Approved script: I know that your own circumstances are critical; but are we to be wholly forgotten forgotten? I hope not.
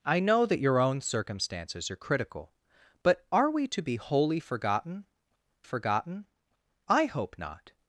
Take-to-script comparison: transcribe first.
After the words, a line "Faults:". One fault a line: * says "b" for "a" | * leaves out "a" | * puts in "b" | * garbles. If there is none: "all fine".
I know that your own circumstances are critical; but are we to be wholly forgotten forgotten? I hope not.
Faults:
all fine